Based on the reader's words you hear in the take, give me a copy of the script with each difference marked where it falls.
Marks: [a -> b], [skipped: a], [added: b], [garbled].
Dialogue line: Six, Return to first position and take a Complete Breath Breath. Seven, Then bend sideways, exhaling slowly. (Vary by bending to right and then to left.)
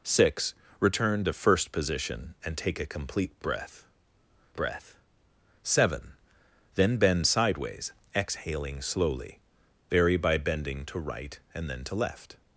Six, Return to first position and take a Complete Breath Breath. Seven, Then bend sideways, exhaling slowly. (Vary by bending to right and then to left.)